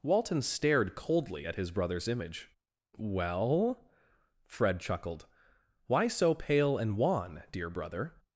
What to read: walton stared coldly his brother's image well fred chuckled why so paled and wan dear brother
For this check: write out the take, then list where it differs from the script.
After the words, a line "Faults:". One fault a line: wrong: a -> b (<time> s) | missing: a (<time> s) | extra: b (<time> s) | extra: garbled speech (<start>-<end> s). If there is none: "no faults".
walton stared coldly at his brother's image well fred chuckled why so pale and wan dear brother
Faults:
extra: at (1.4 s)
wrong: paled -> pale (6.3 s)